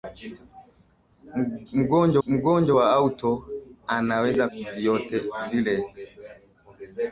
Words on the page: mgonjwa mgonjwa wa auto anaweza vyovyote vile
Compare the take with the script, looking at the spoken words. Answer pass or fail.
pass